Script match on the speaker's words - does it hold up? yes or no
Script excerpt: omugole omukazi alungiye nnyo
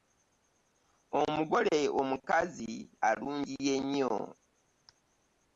yes